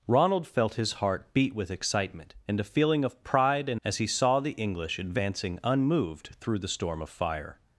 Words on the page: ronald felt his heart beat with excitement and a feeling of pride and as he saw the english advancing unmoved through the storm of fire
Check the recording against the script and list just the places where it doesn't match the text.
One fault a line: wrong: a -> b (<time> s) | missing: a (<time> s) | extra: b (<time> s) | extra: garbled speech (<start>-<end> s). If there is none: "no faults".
no faults